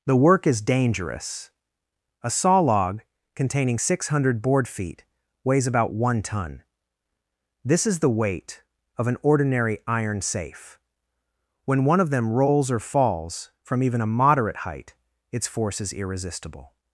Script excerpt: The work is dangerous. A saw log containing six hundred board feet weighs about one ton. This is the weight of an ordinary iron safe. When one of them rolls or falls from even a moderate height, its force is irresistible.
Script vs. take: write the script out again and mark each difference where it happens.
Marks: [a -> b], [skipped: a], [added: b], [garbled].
The work is dangerous. A saw log containing six hundred board feet weighs about one ton. This is the weight of an ordinary iron safe. When one of them rolls or falls from even a moderate height, its force is irresistible.